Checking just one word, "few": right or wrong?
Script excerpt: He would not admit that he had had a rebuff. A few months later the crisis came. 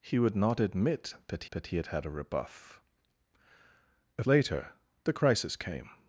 wrong